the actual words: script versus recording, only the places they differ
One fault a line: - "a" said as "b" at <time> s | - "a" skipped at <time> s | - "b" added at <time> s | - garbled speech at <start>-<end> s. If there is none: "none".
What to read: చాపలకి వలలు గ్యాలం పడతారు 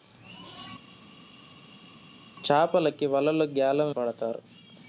none